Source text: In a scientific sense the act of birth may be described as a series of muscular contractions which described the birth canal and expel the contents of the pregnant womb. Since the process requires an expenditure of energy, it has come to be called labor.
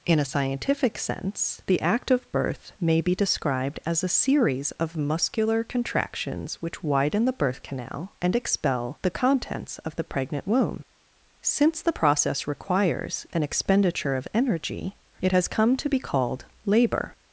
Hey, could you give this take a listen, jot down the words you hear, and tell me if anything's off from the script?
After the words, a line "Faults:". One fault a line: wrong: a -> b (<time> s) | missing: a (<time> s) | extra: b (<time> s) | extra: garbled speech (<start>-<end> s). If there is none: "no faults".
In a scientific sense the act of birth may be described as a series of muscular contractions which widen the birth canal and expel the contents of the pregnant womb. Since the process requires an expenditure of energy, it has come to be called labor.
Faults:
wrong: described -> widen (6.8 s)